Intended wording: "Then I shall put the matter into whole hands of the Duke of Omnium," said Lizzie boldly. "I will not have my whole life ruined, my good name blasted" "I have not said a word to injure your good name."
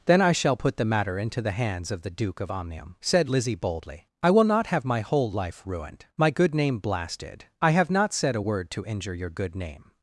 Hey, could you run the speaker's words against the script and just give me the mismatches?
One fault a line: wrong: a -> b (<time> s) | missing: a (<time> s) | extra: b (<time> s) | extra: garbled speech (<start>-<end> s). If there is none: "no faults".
wrong: whole -> the (1.4 s)